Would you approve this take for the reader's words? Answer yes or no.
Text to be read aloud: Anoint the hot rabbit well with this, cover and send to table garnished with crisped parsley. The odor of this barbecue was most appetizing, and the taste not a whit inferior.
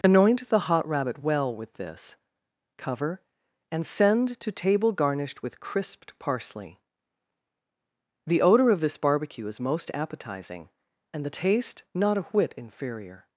no